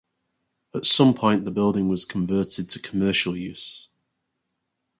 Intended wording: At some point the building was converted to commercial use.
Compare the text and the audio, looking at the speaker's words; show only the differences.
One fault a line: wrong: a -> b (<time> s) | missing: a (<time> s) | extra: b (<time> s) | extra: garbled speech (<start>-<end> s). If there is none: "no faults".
no faults